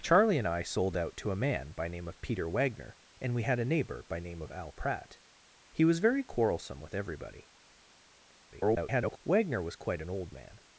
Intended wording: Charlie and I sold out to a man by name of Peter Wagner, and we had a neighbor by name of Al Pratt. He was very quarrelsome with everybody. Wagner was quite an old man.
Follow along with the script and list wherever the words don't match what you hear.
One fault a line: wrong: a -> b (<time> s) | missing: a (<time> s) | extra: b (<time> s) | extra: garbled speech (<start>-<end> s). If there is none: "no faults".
extra: garbled speech (8.5-9.2 s)